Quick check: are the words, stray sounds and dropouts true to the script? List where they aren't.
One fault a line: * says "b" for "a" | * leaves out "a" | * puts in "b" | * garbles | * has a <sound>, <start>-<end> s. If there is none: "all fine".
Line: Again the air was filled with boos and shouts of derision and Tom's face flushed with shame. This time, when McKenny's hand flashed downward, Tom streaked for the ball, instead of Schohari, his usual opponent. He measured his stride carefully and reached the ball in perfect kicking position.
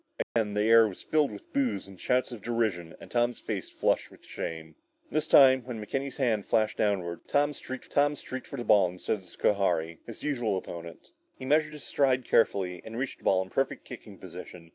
* has a dropout, 0.2-0.4 s
* puts in "Tom streaked"